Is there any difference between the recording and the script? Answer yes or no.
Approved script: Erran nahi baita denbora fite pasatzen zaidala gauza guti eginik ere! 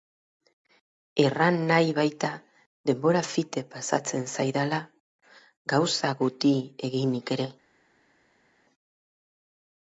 no